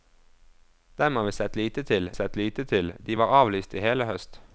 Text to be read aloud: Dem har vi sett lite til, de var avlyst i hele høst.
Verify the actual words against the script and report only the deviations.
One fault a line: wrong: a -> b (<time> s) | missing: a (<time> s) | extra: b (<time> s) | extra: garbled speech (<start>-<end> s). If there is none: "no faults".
extra: sett lite til (2.1 s)